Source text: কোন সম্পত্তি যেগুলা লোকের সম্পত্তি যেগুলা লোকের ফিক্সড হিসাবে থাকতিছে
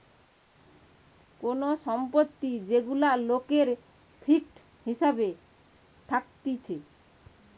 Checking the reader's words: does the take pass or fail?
fail